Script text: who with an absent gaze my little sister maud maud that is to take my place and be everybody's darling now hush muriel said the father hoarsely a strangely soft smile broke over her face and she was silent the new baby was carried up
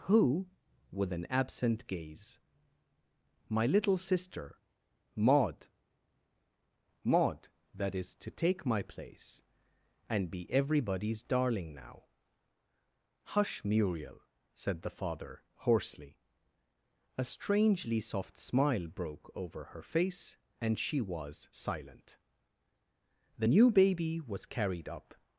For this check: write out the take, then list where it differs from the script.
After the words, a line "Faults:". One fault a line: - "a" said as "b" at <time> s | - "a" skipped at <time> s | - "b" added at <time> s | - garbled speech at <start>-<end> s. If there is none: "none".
who with an absent gaze my little sister maud maud that is to take my place and be everybody's darling now hush muriel said the father hoarsely a strangely soft smile broke over her face and she was silent the new baby was carried up
Faults:
none